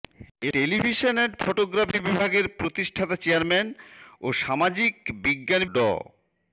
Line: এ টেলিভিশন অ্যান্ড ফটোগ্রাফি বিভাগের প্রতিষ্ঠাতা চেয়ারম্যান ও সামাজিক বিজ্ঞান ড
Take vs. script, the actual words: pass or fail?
pass